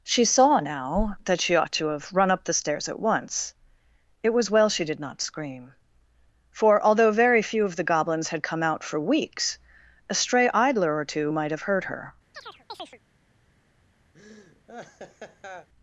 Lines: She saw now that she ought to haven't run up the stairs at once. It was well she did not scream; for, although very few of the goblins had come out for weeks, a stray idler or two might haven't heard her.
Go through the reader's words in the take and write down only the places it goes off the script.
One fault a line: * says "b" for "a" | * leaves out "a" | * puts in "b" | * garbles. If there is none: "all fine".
* says "have" for "haven't"
* says "have" for "haven't"